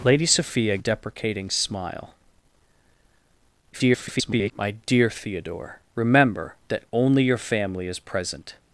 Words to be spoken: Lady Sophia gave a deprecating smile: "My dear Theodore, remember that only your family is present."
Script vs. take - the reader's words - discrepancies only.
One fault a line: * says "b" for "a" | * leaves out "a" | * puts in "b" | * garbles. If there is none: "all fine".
* leaves out "gave"
* garbles